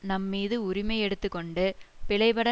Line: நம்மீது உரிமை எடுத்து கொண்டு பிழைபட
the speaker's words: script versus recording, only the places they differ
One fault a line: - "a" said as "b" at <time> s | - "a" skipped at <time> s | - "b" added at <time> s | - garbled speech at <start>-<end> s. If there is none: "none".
none